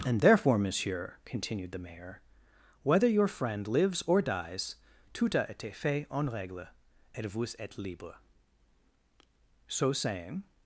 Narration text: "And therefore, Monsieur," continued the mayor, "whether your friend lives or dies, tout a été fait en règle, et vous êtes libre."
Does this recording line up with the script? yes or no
no